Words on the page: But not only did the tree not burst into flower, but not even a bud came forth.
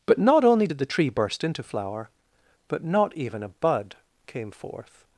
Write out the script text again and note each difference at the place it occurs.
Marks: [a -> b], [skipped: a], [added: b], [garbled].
But not only did the tree [skipped: not] burst into flower, but not even a bud came forth.